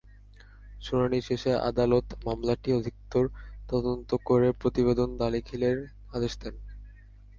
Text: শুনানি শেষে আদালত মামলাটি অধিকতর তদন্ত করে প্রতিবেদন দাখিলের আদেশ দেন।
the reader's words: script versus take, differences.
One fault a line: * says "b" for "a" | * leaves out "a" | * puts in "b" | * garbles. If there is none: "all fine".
all fine